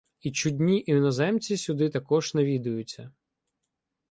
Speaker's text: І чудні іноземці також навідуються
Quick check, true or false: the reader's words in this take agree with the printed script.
false